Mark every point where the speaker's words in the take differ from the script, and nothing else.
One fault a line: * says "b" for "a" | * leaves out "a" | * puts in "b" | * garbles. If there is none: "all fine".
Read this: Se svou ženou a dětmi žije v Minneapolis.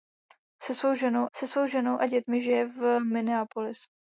* puts in "se svou ženou"